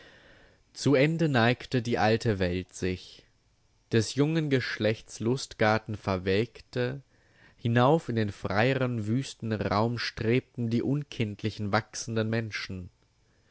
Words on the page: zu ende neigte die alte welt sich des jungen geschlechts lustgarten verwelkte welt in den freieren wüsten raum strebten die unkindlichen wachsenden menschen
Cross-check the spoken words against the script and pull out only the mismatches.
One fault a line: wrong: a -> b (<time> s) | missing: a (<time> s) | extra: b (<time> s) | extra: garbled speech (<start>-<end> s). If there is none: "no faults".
wrong: welt -> hinauf (7.6 s)